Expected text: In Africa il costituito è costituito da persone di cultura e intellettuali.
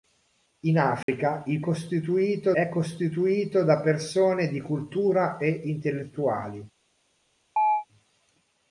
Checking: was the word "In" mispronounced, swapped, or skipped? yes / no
no